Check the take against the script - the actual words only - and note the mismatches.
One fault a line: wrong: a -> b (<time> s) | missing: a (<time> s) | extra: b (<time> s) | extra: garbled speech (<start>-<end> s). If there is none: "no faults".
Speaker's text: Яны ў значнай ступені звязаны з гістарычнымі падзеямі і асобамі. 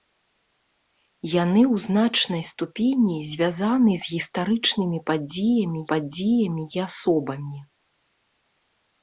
extra: падзеямі (5.9 s)